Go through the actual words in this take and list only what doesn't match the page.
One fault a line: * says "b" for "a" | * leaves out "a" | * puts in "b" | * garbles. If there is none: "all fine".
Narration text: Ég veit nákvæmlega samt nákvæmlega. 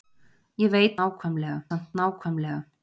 all fine